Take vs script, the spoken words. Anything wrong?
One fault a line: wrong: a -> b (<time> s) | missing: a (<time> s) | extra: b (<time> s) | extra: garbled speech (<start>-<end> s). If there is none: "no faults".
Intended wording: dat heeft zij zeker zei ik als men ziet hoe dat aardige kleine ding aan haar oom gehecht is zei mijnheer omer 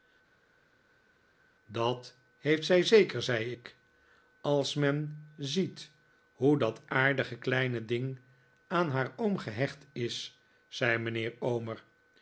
no faults